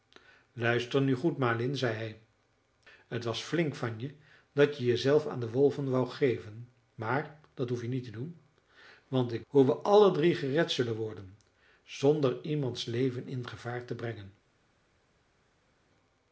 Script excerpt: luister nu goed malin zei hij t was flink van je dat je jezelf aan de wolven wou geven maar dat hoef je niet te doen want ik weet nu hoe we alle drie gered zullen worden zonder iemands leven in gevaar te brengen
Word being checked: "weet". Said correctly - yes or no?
no